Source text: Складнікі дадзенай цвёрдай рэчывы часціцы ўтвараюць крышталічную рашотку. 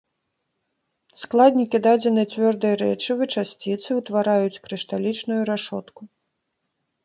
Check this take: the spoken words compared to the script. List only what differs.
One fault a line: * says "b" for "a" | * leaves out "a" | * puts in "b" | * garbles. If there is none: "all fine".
all fine